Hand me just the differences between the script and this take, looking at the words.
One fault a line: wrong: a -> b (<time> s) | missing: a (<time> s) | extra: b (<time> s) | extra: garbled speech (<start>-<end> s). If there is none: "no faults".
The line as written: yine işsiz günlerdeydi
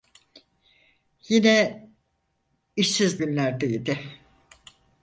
no faults